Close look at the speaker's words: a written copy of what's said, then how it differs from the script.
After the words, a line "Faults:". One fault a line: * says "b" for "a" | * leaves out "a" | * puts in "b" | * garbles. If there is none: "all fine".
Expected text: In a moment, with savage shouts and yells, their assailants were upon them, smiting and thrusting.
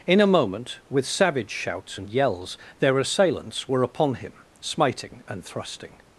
In a moment, with savage shouts and yells, their assailants were upon him, smiting and thrusting.
Faults:
* says "him" for "them"